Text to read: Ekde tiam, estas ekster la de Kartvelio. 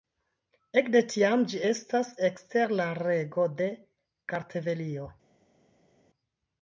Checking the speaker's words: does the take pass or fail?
fail